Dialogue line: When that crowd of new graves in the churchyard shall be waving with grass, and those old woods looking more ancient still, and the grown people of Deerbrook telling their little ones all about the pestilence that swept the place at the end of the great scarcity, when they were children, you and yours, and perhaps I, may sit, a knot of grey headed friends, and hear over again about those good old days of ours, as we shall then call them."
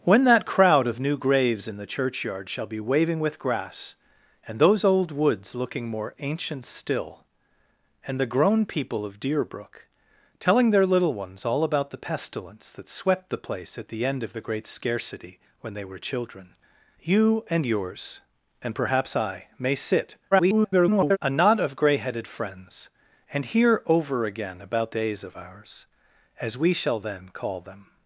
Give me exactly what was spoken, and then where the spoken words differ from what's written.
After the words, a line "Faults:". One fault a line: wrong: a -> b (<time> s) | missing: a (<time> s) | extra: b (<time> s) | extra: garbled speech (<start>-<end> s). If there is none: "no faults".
When that crowd of new graves in the churchyard shall be waving with grass, and those old woods looking more ancient still, and the grown people of Deerbrook telling their little ones all about the pestilence that swept the place at the end of the great scarcity, when they were children, you and yours, and perhaps I, may sit, [garbled] a knot of grey headed friends, and hear over again about days of ours, as we shall then call them."
Faults:
extra: garbled speech (20.3-21.2 s)
missing: those good old (24.9 s)